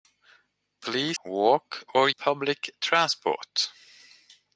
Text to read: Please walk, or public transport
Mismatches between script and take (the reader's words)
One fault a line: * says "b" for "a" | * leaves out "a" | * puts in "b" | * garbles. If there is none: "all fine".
all fine